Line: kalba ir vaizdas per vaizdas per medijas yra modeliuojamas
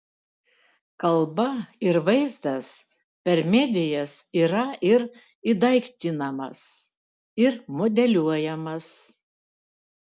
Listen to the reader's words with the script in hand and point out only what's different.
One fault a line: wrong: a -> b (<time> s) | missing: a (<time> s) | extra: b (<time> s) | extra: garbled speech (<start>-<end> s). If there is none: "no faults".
wrong: vaizdas per medijas yra -> medijas yra ir įdaiktinamas ir (3.6 s)